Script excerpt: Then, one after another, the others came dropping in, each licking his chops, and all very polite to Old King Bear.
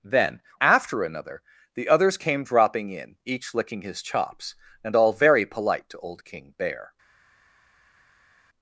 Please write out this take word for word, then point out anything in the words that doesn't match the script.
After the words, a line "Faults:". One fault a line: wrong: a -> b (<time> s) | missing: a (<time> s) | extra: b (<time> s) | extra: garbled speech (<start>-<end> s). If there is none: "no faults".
Then, after another, the others came dropping in, each licking his chops, and all very polite to Old King Bear.
Faults:
missing: one (0.4 s)